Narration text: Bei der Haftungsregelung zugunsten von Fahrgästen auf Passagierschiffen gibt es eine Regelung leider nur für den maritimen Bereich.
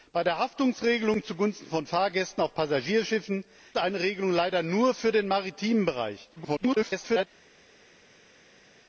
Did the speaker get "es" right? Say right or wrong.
wrong